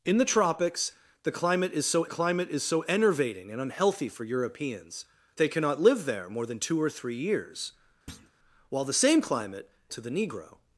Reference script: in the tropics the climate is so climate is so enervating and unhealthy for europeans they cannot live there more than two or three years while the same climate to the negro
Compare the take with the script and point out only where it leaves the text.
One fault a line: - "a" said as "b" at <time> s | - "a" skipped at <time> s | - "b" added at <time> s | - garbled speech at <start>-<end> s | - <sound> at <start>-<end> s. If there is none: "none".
- thud at 8.1-8.3 s